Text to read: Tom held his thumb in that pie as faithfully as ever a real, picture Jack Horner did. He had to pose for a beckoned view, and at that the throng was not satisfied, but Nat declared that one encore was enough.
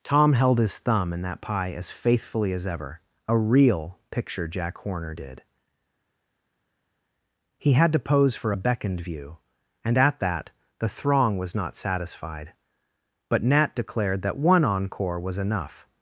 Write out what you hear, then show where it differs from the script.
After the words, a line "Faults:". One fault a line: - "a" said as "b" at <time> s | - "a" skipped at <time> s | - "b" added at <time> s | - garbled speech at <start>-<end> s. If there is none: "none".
Tom held his thumb in that pie as faithfully as ever a real, picture Jack Horner did. He had to pose for a beckoned view, and at that the throng was not satisfied, but Nat declared that one encore was enough.
Faults:
none